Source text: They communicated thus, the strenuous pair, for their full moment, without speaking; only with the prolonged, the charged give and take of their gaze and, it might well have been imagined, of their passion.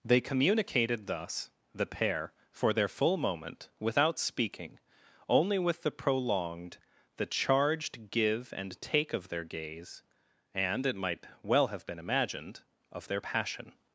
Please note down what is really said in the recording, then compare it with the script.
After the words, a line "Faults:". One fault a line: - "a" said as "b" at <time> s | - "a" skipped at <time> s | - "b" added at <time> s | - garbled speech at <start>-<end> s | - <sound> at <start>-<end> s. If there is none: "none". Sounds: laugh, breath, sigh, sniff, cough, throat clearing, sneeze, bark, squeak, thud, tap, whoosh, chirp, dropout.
They communicated thus, the pair, for their full moment, without speaking; only with the prolonged, the charged give and take of their gaze and, it might well have been imagined, of their passion.
Faults:
- "strenuous" skipped at 1.9 s